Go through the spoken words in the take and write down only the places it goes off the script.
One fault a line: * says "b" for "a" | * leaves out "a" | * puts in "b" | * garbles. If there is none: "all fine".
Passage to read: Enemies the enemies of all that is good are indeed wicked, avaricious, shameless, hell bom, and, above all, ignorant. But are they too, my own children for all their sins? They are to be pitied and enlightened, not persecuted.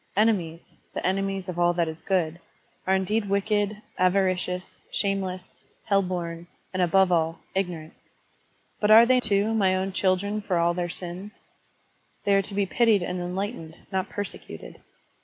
all fine